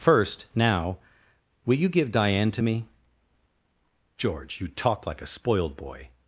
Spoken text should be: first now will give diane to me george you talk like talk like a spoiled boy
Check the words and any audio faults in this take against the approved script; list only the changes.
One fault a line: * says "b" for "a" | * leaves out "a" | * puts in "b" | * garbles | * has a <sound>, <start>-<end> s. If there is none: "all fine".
* puts in "you"
* leaves out "talk like"